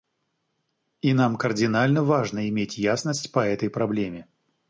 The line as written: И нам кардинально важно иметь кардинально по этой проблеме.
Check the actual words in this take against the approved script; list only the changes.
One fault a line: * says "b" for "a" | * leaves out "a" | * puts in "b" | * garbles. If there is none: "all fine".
* says "ясность" for "кардинально"